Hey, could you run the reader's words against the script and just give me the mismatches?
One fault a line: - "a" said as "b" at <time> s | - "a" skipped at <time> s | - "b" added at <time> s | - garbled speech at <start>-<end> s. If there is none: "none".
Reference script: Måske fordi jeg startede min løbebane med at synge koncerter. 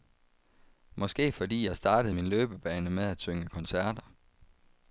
none